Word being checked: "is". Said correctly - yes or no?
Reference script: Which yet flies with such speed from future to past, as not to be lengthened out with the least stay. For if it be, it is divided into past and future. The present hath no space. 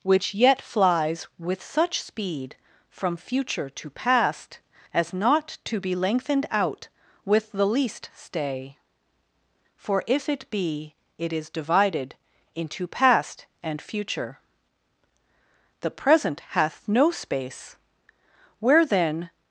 yes